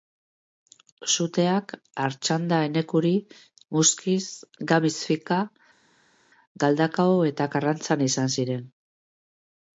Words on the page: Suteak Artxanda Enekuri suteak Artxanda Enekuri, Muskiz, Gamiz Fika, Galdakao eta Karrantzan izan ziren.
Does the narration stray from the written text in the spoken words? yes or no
yes